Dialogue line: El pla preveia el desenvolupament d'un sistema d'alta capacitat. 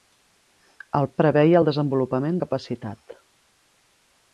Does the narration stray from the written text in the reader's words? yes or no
yes